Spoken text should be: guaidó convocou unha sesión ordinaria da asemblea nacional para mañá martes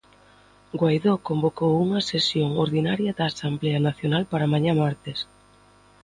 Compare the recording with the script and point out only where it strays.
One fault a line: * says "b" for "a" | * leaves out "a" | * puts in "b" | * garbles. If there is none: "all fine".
all fine